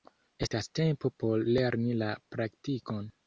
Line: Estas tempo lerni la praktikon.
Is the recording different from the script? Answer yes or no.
yes